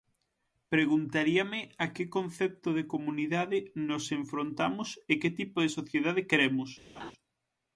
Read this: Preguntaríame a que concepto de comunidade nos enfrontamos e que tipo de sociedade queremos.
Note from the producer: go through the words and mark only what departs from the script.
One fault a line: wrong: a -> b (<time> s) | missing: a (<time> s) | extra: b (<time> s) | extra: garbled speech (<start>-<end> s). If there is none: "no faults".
no faults